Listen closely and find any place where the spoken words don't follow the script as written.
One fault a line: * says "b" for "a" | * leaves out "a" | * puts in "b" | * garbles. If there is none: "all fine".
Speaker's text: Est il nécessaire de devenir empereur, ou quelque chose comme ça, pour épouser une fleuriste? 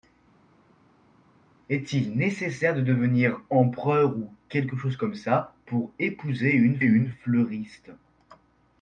* puts in "une"